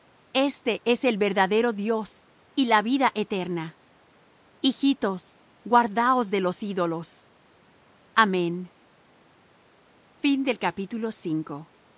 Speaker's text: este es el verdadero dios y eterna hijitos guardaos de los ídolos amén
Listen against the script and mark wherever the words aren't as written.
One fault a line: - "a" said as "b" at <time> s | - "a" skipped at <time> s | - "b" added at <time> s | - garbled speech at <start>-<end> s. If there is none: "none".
- "la vida" added at 2.6 s